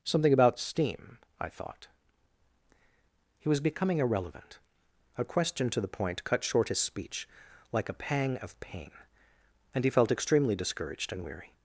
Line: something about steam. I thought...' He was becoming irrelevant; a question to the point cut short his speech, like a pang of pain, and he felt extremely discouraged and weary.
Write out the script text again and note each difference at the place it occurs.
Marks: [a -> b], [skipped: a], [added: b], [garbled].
something about steam. I thought...' He was becoming irrelevant; a question to the point cut short his speech, like a pang of pain, and he felt extremely discouraged and weary.